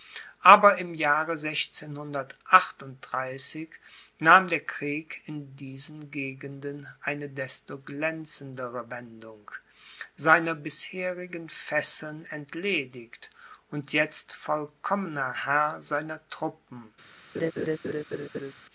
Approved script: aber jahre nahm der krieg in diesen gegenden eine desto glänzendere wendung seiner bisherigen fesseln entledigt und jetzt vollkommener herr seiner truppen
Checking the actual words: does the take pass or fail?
fail